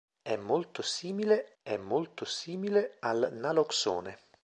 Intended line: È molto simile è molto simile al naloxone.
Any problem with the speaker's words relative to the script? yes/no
no